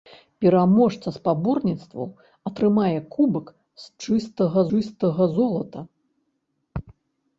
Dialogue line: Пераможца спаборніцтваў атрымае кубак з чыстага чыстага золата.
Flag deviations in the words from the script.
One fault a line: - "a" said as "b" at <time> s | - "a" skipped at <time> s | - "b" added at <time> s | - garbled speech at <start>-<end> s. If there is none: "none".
none